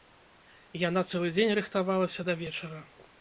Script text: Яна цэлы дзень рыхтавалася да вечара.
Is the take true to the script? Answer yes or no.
yes